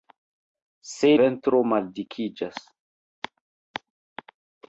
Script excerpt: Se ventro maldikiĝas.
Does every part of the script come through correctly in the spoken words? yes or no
yes